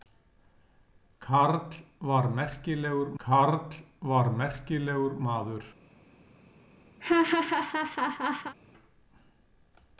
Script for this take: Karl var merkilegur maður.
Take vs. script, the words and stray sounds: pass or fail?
fail